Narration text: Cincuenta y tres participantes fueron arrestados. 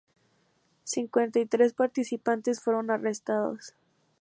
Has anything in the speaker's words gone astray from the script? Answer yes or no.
no